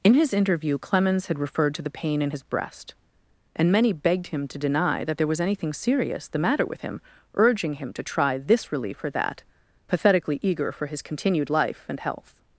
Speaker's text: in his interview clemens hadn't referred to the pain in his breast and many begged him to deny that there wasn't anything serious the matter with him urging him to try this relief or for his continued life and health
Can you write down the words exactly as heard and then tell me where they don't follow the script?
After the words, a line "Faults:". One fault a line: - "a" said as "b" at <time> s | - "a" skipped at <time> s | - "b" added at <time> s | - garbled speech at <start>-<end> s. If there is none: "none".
in his interview clemens had referred to the pain in his breast and many begged him to deny that there was anything serious the matter with him urging him to try this relief or that pathetically eager for his continued life and health
Faults:
- "hadn't" said as "had" at 1.3 s
- "wasn't" said as "was" at 5.3 s
- "that pathetically eager" added at 9.1 s